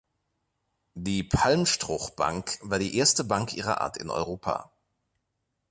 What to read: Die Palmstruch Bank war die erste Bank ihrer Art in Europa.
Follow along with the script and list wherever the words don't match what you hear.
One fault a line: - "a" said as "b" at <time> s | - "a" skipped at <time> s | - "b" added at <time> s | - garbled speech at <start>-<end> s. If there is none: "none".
none